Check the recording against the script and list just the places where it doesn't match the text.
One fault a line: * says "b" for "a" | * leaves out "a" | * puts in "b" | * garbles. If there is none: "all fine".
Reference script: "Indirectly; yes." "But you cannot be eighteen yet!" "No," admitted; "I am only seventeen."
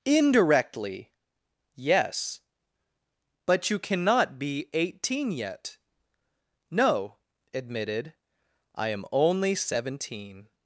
all fine